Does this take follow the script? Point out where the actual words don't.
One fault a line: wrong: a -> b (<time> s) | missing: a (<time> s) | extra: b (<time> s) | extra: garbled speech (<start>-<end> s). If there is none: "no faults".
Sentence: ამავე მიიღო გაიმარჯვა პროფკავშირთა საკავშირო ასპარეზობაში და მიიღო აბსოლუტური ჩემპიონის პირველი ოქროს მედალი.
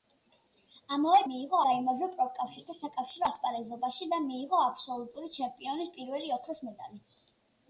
no faults